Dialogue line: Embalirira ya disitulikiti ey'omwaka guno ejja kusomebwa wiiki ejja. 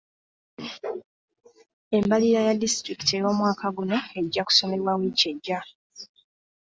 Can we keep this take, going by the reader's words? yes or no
yes